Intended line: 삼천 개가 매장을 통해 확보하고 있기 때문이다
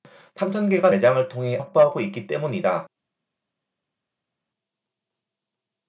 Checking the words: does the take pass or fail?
pass